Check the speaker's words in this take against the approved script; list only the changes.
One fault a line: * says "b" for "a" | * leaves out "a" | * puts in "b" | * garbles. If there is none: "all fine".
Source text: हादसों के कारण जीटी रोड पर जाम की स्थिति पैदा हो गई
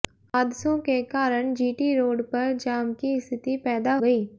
* leaves out "हो"